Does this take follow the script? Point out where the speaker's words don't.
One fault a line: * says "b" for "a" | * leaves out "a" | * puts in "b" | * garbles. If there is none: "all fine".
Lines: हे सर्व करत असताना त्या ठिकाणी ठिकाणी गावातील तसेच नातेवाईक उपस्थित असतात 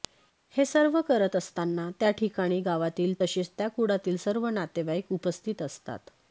* leaves out "ठिकाणी"
* puts in "त्या कुळातील सर्व"